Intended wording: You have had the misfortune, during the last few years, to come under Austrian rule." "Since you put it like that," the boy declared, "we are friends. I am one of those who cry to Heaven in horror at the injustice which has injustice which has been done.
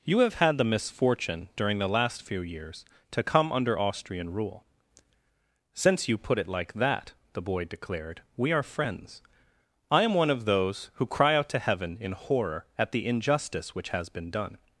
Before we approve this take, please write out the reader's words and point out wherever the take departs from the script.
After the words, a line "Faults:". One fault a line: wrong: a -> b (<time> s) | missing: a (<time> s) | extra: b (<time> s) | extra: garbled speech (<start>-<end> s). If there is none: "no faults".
You have had the misfortune, during the last few years, to come under Austrian rule." "Since you put it like that," the boy declared, "we are friends. I am one of those who cry out to Heaven in horror at the injustice which has been done.
Faults:
extra: out (11.3 s)
missing: injustice which has (14.1 s)